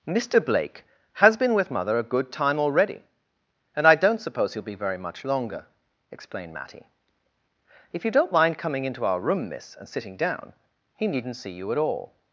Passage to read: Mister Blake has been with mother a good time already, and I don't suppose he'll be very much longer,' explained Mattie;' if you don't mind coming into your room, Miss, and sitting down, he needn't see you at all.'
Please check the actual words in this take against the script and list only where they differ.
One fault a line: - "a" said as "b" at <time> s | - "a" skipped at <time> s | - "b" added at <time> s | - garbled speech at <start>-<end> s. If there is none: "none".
- "your" said as "our" at 9.0 s